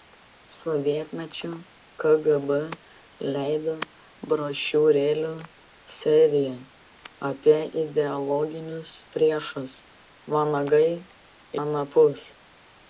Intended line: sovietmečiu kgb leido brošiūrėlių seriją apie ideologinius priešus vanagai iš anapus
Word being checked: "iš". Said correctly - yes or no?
no